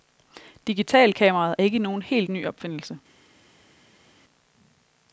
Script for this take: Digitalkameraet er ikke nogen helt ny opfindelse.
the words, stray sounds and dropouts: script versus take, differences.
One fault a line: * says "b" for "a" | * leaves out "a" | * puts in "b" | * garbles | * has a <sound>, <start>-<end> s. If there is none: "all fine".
all fine